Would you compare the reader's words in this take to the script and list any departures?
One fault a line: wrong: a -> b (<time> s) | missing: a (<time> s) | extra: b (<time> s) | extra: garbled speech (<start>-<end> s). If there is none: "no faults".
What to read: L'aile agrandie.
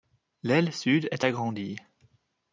extra: sud est (0.7 s)